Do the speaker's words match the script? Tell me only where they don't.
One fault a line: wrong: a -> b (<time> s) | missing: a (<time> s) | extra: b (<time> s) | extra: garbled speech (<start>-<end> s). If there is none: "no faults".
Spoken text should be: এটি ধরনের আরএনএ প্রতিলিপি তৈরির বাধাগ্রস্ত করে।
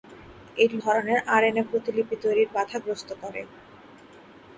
no faults